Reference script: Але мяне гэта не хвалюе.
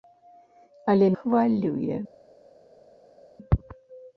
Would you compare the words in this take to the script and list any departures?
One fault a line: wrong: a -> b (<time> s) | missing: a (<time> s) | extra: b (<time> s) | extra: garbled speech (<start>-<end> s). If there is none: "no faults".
missing: мяне гэта не (1.1 s)